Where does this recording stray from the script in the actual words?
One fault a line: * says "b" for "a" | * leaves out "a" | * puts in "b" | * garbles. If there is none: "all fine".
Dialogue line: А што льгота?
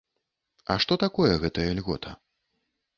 * puts in "такое гэтая"